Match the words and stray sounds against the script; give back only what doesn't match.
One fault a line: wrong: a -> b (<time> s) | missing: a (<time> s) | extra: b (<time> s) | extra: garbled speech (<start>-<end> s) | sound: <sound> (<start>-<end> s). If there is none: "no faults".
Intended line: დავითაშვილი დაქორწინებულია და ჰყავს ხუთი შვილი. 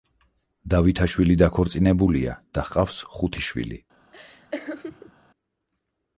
sound: laugh (4.1-5.1 s)